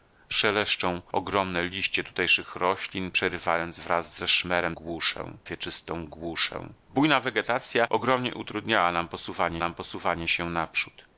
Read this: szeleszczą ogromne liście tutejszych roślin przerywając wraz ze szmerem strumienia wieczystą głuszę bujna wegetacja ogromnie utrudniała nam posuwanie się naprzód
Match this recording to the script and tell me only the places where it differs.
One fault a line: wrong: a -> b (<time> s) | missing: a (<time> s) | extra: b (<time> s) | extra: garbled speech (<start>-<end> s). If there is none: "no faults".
wrong: strumienia -> głuszę (4.7 s)
extra: nam posuwanie (9.6 s)